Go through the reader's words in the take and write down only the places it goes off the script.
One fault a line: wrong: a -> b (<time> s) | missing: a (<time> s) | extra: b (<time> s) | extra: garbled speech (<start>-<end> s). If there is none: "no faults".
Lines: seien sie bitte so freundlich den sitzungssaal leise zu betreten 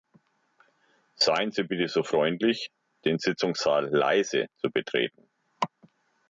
no faults